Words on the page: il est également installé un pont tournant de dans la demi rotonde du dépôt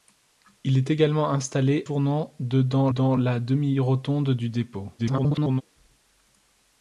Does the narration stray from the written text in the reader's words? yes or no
yes